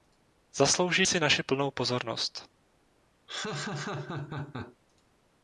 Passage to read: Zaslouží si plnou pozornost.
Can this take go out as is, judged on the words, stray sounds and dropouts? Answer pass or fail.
fail